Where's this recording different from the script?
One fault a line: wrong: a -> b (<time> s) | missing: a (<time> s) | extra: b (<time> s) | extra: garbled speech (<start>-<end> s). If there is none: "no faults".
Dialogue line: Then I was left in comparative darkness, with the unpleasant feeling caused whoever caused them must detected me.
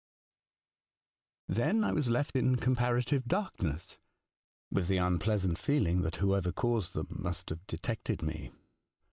wrong: caused -> that (6.0 s)
extra: have (7.5 s)